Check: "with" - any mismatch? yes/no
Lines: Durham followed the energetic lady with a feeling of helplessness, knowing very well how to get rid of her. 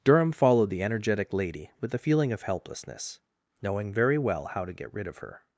no